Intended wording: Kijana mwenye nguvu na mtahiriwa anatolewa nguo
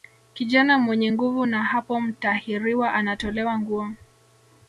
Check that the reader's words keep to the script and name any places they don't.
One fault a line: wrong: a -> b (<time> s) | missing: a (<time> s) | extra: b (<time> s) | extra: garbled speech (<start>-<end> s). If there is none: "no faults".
extra: hapo (1.6 s)